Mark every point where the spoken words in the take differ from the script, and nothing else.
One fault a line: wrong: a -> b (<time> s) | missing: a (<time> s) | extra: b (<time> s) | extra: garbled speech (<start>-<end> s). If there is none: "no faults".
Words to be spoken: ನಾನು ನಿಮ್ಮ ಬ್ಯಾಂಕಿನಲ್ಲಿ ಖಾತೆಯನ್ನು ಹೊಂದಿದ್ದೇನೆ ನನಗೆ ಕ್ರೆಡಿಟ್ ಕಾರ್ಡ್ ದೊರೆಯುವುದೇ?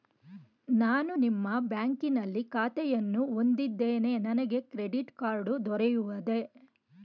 no faults